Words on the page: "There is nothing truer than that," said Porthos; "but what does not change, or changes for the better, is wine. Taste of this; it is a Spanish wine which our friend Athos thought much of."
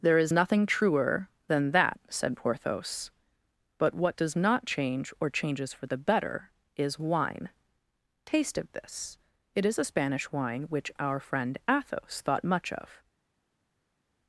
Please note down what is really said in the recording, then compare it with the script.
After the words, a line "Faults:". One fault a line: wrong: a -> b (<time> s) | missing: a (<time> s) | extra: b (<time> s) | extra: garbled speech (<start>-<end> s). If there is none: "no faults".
"There is nothing truer than that," said Porthos; "but what does not change, or changes for the better, is wine. Taste of this; it is a Spanish wine which our friend Athos thought much of."
Faults:
no faults